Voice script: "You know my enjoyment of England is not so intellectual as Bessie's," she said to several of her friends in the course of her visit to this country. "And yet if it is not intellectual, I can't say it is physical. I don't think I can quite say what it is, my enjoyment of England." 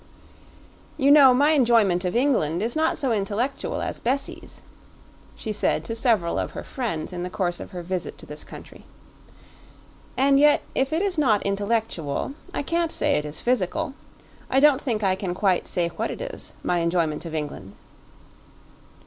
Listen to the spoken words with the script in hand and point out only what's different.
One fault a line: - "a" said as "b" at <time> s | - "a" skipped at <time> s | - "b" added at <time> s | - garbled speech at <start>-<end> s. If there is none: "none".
none